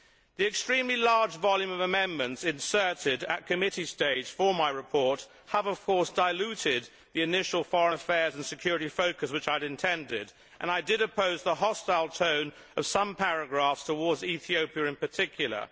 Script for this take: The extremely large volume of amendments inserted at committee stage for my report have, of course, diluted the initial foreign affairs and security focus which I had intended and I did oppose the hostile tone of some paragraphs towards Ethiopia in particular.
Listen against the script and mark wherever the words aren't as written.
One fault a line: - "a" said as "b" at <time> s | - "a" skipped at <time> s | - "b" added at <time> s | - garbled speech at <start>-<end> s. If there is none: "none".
none